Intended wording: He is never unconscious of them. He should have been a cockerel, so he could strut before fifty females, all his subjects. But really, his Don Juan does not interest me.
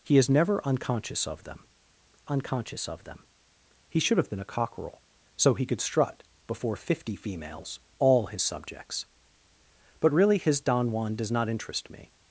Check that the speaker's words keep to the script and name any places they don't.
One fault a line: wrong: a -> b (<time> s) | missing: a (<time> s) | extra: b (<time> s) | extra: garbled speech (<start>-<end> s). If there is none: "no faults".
extra: unconscious of them (2.3 s)